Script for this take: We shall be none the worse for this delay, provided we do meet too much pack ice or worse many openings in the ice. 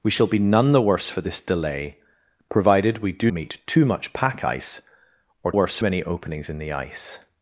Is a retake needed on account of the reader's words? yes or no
no